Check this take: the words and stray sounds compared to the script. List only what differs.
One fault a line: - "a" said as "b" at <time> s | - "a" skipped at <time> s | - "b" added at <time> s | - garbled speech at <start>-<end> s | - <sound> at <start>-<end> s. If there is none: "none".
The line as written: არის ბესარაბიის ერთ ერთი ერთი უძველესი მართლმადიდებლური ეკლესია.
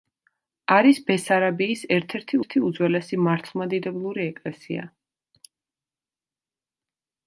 none